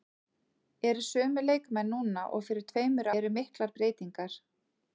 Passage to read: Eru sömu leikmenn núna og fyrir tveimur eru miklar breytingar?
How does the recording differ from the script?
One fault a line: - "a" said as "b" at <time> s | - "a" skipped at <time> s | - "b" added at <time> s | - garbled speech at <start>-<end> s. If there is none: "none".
none